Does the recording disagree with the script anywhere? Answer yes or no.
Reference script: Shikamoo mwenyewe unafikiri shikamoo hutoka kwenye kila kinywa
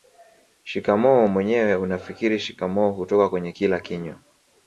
no